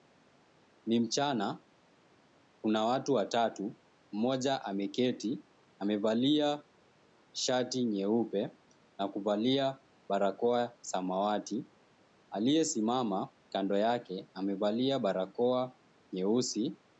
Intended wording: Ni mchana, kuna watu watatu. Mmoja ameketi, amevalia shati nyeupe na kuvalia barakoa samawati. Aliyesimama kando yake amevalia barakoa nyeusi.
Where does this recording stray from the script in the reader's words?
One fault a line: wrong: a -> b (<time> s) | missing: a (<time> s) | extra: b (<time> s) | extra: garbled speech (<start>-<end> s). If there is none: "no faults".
no faults